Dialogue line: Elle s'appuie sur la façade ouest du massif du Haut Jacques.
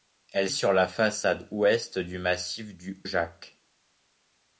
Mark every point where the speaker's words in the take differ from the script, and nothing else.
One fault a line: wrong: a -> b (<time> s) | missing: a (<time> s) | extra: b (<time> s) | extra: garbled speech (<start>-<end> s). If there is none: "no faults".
missing: s'appuie (0.5 s)
missing: Haut (3.0 s)